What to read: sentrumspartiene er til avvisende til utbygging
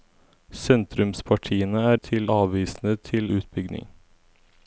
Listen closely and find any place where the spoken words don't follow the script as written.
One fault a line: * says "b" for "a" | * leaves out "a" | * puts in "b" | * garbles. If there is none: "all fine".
all fine